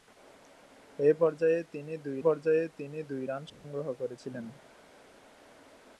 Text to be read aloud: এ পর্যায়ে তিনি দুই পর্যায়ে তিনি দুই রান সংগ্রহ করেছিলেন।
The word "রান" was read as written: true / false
true